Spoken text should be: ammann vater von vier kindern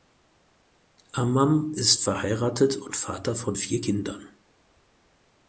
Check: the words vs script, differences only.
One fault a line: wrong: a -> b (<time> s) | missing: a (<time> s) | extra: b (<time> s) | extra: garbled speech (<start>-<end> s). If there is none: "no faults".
extra: ist verheiratet und (1.8 s)